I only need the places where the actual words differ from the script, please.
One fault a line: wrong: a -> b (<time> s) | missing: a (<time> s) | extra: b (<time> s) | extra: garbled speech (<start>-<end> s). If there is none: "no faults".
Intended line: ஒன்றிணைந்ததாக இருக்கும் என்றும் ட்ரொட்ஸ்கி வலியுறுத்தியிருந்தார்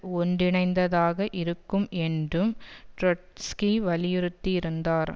no faults